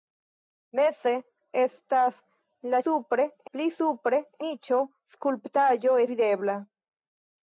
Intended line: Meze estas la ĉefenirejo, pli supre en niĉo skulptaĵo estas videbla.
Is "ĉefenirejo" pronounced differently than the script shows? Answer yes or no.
yes